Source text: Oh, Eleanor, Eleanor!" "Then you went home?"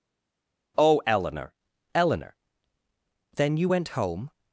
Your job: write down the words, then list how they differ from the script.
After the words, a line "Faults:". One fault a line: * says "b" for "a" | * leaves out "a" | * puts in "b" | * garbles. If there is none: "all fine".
Oh, Eleanor, Eleanor!" "Then you went home?"
Faults:
all fine